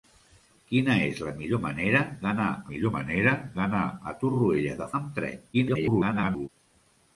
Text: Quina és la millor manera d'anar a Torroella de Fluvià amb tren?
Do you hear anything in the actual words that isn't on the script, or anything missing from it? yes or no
yes